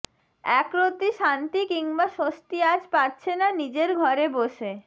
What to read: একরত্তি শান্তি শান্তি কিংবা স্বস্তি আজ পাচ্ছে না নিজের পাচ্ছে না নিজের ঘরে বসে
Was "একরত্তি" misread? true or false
false